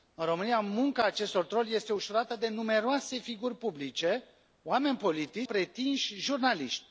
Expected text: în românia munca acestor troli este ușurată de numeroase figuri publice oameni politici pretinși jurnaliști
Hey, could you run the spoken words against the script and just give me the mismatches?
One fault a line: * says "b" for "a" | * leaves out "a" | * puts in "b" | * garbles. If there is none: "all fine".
all fine